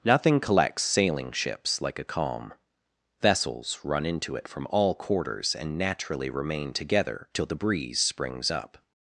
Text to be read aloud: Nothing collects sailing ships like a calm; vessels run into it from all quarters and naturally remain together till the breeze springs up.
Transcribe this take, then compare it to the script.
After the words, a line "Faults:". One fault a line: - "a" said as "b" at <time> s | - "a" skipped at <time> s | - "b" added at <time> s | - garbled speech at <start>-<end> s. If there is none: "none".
Nothing collects sailing ships like a calm; vessels run into it from all quarters and naturally remain together till the breeze springs up.
Faults:
none